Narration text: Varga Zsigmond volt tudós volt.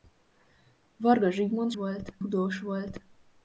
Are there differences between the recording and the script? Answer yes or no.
no